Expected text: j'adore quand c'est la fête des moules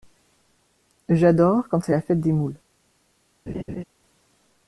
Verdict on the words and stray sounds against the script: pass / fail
fail